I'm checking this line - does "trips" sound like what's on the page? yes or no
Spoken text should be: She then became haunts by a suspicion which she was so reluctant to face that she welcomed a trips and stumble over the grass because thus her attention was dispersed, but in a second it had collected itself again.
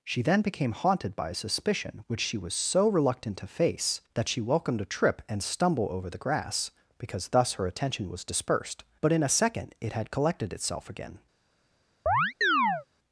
no